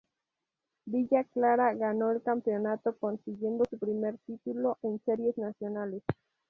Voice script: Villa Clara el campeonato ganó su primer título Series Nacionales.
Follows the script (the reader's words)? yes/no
no